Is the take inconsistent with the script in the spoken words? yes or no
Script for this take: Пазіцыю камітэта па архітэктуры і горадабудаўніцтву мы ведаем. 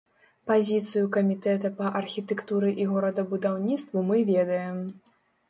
no